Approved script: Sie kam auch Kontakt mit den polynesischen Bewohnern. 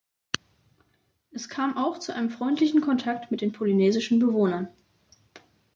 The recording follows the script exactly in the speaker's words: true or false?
false